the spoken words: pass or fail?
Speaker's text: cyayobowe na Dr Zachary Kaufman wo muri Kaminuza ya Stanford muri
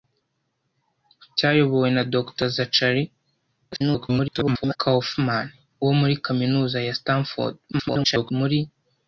fail